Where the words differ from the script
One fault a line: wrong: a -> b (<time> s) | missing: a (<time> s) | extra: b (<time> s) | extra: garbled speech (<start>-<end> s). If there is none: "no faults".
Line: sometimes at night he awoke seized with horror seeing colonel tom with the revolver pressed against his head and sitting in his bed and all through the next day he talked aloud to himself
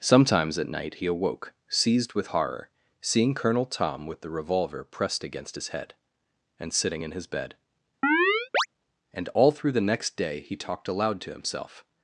no faults